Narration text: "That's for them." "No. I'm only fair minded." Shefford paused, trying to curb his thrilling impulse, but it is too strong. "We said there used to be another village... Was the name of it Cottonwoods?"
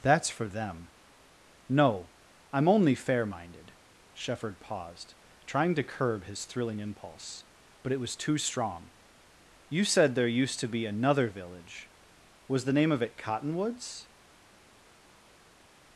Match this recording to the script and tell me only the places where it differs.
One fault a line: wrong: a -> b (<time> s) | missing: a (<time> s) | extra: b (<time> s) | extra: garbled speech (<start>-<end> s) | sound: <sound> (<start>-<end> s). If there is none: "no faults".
wrong: is -> was (8.0 s)
wrong: We -> You (9.7 s)